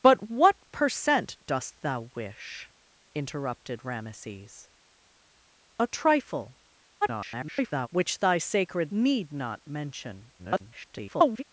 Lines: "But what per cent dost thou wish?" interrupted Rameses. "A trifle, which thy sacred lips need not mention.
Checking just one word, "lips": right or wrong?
wrong